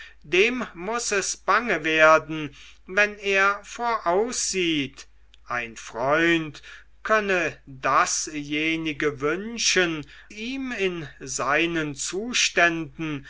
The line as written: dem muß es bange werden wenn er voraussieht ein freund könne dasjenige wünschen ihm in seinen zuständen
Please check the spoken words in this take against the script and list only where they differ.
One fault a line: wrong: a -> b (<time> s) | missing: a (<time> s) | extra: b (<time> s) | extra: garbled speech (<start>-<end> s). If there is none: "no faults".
no faults